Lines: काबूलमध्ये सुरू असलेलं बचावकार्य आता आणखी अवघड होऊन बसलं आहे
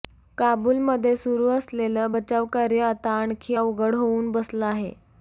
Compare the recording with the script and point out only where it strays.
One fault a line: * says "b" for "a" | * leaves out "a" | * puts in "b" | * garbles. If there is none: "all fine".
all fine